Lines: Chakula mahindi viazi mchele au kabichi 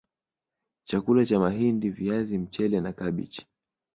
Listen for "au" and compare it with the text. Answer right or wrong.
wrong